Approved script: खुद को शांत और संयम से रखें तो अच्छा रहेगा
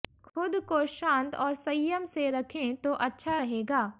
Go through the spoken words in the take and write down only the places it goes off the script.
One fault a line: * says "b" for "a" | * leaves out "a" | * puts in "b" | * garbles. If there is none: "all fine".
all fine